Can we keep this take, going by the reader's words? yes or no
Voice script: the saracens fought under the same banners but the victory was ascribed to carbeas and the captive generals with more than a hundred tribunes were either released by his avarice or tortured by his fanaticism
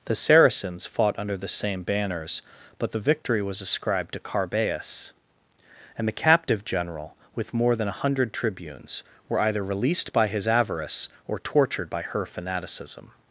no